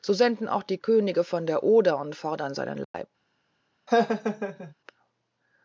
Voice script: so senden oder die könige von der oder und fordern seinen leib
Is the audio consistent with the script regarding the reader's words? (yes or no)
no